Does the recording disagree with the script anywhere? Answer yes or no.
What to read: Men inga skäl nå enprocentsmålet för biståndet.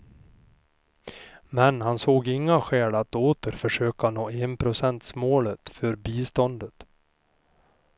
yes